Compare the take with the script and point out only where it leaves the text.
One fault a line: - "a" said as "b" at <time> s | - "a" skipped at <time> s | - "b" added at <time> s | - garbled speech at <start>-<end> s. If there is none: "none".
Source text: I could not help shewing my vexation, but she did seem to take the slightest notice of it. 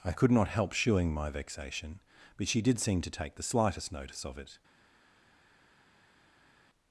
none